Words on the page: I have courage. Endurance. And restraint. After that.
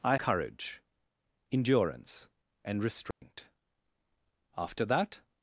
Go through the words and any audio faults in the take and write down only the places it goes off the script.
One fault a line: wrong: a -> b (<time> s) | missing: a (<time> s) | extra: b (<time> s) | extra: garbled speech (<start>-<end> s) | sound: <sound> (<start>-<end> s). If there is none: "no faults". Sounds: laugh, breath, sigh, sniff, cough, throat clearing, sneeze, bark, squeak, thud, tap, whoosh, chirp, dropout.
missing: have (0.2 s)
sound: dropout (3.1-3.2 s)